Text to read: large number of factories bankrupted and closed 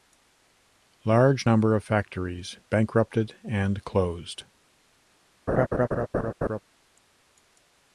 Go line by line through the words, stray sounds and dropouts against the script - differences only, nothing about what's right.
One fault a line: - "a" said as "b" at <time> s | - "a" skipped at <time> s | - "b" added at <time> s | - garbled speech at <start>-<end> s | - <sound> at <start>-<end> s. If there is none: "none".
- laugh at 5.5-6.6 s